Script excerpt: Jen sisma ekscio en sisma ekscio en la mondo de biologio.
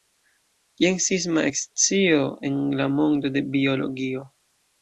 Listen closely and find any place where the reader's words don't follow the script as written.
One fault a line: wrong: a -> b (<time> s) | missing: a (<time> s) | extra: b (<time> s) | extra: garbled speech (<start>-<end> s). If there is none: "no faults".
missing: sisma ekscio en (2.6 s)